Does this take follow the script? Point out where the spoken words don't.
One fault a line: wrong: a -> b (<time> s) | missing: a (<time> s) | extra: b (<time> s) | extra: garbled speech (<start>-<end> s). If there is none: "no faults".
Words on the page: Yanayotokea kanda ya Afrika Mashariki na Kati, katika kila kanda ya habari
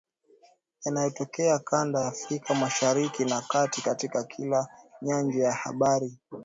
wrong: kanda -> nyanja (5.0 s)